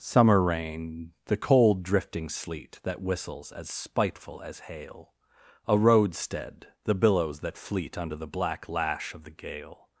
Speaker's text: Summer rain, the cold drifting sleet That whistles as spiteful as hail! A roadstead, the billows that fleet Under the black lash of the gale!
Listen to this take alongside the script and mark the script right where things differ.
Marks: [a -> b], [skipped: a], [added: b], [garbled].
Summer rain, the cold drifting sleet That whistles as spiteful as hail! A roadstead, the billows that fleet Under the black lash of the gale!